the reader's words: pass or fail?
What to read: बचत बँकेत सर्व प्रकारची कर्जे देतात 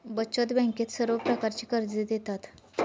pass